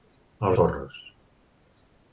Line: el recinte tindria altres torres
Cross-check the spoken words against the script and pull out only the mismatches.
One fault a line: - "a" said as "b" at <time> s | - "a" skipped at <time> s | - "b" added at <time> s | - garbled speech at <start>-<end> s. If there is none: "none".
- "recinte tindria altres" skipped at 0.6 s